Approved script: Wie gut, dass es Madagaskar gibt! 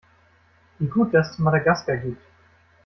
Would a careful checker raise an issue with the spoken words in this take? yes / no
no